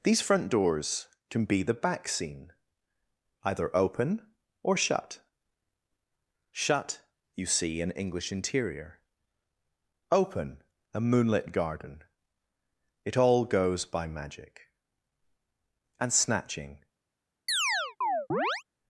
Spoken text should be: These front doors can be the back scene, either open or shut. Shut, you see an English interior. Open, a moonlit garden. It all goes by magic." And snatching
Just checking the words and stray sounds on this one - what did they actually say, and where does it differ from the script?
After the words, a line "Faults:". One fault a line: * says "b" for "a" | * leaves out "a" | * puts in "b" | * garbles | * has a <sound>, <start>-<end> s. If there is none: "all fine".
These front doors can be the back scene, either open or shut. Shut, you see an English interior. Open, a moonlit garden. It all goes by magic." And snatching
Faults:
* has a chirp, 17.5-18.6 s